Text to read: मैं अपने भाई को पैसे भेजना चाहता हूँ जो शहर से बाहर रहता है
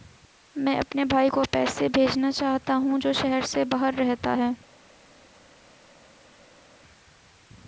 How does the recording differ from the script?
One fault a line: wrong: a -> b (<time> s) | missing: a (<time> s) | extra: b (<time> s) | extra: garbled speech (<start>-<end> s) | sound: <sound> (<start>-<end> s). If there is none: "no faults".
no faults